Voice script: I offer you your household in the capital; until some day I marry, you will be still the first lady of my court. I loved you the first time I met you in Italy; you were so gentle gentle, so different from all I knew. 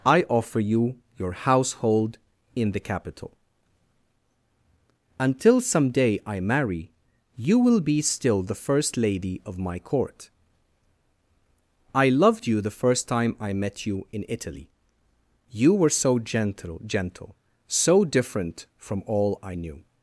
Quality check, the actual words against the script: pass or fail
pass